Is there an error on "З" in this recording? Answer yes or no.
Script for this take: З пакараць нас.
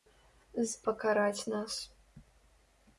no